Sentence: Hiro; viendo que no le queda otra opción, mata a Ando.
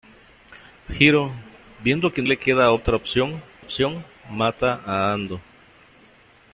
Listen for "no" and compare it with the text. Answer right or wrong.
wrong